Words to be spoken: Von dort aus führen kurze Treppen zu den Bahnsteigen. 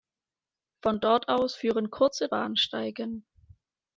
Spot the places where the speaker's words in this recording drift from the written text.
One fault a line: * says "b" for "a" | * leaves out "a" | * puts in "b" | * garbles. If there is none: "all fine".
* leaves out "Treppen zu den"